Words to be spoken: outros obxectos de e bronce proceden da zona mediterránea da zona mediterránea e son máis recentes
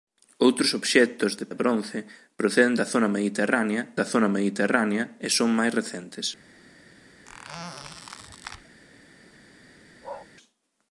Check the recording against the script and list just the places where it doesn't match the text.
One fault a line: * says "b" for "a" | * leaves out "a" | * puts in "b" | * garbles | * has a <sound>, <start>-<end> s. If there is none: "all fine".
* has a squeak, 7.3-8.8 s
* has a bark, 10.0-10.3 s